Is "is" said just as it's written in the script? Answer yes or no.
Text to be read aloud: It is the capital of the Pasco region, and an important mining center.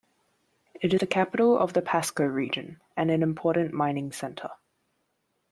no